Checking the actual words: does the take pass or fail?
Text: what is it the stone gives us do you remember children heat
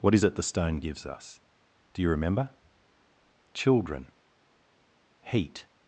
pass